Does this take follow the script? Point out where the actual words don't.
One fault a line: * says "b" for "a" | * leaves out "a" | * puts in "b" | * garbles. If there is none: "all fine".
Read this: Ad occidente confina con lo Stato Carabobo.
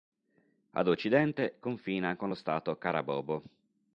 all fine